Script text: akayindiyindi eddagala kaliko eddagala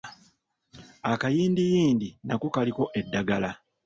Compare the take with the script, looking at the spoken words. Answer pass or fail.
fail